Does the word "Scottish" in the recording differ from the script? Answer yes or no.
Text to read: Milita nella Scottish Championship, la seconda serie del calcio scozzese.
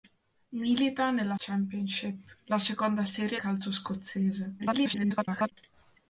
yes